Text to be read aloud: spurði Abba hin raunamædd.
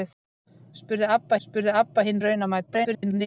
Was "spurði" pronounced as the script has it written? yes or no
yes